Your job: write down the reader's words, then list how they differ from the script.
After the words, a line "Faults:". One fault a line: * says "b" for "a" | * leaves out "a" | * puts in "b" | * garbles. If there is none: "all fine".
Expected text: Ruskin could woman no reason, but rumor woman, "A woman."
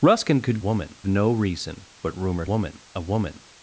Ruskin could woman no reason, but rumor woman, "A woman."
Faults:
all fine